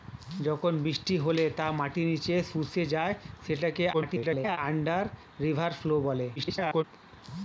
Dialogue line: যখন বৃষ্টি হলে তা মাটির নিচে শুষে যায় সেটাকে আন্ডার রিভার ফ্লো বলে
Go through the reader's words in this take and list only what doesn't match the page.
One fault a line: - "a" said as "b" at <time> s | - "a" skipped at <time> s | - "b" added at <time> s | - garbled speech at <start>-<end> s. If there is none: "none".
- garbled speech at 3.9-4.6 s
- garbled speech at 6.4-6.8 s